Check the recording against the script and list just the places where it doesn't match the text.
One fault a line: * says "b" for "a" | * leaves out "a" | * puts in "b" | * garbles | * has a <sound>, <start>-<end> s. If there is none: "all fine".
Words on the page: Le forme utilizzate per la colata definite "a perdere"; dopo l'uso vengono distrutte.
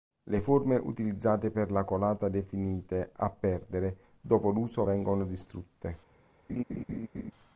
* has a laugh, 6.5-7.3 s